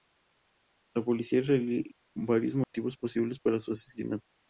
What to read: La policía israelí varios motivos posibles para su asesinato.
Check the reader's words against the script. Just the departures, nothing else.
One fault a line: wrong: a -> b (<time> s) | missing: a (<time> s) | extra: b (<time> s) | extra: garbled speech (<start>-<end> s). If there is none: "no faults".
no faults